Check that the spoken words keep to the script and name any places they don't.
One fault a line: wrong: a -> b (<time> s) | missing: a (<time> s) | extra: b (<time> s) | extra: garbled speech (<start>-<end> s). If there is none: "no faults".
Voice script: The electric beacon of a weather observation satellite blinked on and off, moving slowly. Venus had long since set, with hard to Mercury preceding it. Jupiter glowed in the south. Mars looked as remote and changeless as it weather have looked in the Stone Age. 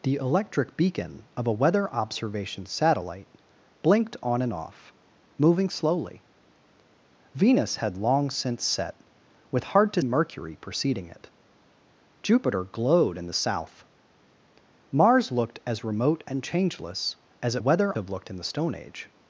no faults